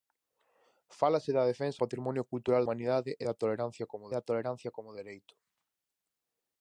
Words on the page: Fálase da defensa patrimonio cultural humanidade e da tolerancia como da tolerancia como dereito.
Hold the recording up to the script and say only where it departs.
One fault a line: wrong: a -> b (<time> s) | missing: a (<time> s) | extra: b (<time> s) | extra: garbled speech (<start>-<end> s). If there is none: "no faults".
no faults